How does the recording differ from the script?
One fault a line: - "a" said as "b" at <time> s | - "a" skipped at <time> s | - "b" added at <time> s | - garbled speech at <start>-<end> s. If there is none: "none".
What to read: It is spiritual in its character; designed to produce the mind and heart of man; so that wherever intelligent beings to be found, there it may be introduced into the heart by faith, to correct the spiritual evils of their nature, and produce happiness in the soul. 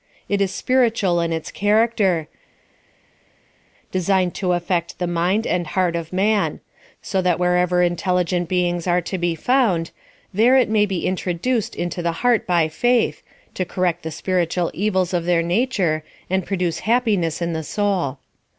- "produce" said as "affect" at 4.5 s
- "are" added at 8.9 s